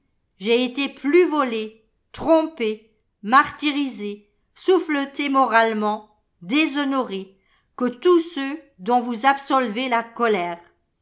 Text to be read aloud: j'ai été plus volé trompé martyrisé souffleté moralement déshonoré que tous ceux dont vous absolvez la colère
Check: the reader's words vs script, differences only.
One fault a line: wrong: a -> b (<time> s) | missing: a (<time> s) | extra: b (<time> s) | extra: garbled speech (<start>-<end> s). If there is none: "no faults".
no faults